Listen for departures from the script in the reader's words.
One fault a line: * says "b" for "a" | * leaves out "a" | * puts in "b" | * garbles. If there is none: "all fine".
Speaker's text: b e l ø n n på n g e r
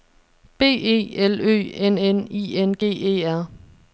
* says "i" for "på"